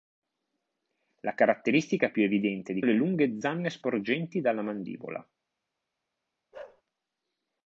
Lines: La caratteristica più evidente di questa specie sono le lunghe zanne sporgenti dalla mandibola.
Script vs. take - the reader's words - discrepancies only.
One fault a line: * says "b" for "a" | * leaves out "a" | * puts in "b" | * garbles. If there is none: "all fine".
* leaves out "questa specie sono"